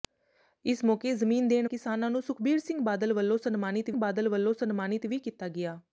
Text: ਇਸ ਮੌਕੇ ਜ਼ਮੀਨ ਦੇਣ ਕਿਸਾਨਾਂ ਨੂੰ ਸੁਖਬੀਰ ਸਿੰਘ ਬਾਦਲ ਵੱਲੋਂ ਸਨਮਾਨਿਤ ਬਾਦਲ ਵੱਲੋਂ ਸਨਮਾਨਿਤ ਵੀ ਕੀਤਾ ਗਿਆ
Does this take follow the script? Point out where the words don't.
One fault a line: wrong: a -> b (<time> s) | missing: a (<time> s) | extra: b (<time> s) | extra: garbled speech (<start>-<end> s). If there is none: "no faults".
no faults